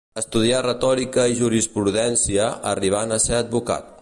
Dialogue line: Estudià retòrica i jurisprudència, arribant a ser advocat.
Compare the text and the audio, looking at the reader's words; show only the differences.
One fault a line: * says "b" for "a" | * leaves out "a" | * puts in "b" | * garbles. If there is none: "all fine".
all fine